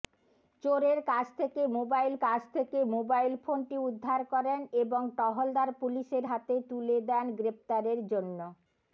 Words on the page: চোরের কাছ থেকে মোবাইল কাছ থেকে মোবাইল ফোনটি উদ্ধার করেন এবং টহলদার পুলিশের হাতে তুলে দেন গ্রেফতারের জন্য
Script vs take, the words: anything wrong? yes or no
no